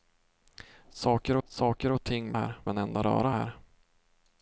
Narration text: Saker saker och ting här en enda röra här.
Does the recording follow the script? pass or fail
pass